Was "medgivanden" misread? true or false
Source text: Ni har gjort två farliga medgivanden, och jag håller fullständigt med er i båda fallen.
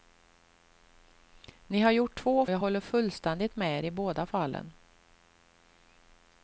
true